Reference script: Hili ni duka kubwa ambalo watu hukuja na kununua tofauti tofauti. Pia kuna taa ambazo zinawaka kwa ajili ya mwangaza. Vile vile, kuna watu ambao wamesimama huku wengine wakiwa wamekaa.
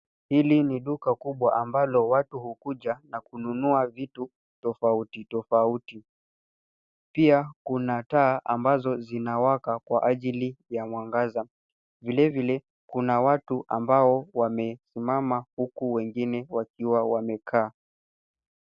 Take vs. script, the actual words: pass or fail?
fail